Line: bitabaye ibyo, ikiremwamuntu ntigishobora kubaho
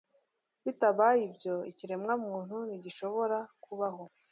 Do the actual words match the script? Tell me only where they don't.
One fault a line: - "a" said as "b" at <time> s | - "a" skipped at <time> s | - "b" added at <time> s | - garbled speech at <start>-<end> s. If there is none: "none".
none